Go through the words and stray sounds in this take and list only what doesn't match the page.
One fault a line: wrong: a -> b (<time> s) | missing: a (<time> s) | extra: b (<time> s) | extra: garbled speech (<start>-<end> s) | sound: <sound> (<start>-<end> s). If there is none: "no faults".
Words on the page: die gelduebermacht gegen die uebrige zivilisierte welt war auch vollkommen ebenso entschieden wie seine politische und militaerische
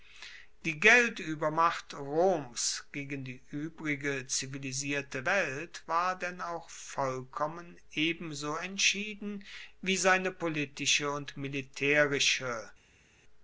extra: roms (1.9 s)
extra: denn (6.2 s)